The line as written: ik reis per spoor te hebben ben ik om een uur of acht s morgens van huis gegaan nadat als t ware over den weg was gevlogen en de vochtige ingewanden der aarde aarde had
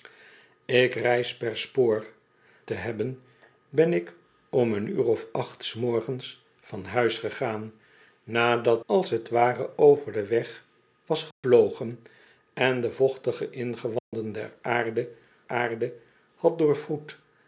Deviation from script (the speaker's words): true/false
false